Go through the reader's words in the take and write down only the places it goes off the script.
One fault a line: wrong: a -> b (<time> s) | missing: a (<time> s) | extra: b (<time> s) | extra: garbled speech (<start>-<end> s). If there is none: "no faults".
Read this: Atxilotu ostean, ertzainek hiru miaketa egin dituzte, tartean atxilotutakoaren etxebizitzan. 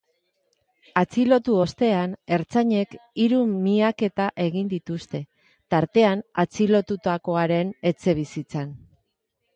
no faults